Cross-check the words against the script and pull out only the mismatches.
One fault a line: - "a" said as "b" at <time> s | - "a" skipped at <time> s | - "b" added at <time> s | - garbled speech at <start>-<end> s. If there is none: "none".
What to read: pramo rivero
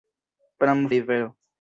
none